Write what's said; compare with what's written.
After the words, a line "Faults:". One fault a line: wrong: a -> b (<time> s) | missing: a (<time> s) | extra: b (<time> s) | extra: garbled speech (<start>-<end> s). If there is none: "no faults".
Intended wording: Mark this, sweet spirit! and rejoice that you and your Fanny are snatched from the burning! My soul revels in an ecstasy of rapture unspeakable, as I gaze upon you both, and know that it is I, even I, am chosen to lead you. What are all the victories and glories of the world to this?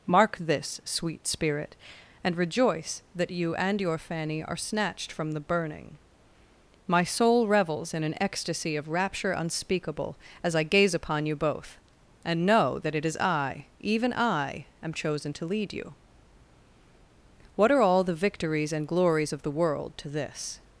Mark this, sweet spirit! and rejoice that you and your Fanny are snatched from the burning! My soul revels in an ecstasy of rapture unspeakable, as I gaze upon you both, and know that it is I, even I, am chosen to lead you. What are all the victories and glories of the world to this?
Faults:
no faults